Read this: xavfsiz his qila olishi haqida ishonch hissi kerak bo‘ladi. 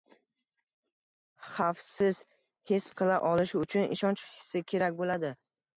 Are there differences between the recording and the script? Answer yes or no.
yes